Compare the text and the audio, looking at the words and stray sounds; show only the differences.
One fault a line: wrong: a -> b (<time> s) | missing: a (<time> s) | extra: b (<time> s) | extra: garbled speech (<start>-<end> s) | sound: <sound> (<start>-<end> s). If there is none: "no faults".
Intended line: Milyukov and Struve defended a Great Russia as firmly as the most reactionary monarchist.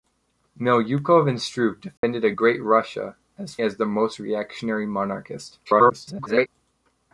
sound: dropout (2.0-2.0 s)
missing: firmly (3.6 s)
extra: garbled speech (5.7-6.5 s)